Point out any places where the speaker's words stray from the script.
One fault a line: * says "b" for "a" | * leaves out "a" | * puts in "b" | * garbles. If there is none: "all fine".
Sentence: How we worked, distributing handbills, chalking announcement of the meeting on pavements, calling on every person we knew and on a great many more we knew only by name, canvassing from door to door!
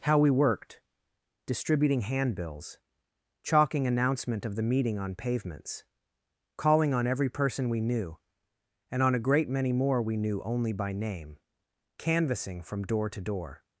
all fine